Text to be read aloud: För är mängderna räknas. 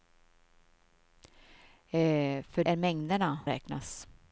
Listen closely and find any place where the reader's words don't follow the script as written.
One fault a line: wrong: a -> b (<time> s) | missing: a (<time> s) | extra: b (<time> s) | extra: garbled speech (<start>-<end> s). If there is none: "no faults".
no faults